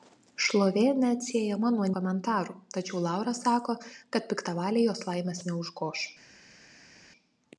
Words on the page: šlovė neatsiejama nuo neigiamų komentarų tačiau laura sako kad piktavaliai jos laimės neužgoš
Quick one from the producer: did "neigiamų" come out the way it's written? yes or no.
no